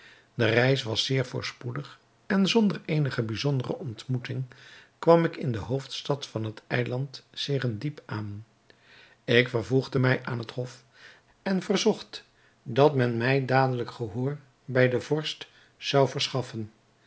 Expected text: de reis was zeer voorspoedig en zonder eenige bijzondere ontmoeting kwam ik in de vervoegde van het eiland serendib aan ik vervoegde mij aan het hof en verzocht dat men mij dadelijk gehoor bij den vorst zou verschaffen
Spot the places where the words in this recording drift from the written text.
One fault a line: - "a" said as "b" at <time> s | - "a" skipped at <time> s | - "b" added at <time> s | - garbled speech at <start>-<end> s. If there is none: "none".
- "vervoegde" said as "hoofdstad" at 5.6 s